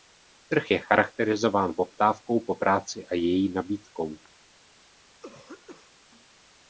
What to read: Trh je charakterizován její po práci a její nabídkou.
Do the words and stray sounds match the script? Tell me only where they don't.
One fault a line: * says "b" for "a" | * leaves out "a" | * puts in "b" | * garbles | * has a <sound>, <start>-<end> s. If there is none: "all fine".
* says "poptávkou" for "její"
* has a throat clearing, 5.2-5.9 s